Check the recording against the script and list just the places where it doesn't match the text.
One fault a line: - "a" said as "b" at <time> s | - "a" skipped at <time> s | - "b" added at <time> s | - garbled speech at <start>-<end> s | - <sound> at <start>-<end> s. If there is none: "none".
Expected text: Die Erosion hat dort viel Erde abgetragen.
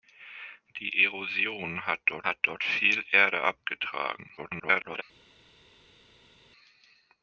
- "hat dort" added at 2.2 s
- garbled speech at 4.4-5.0 s